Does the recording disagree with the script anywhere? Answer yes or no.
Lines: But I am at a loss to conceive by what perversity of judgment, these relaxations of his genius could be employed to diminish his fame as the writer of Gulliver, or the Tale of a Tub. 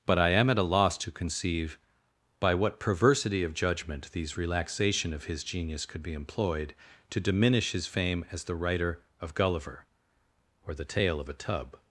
yes